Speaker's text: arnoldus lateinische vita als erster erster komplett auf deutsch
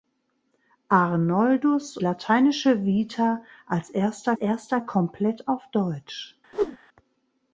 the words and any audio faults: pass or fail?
fail